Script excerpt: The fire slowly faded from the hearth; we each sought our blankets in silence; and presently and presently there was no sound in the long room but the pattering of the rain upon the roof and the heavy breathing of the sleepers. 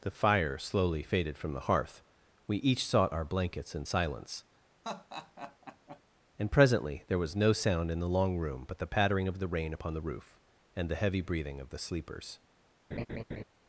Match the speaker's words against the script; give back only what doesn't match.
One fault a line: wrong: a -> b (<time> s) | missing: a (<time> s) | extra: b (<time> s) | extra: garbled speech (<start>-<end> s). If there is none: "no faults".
missing: and presently (7.0 s)